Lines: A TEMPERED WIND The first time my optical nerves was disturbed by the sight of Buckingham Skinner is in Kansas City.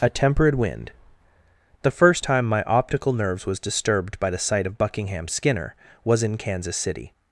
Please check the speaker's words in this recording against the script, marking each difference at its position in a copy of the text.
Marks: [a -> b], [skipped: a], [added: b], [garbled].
A TEMPERED WIND The first time my optical nerves was disturbed by the sight of Buckingham Skinner [is -> was] in Kansas City.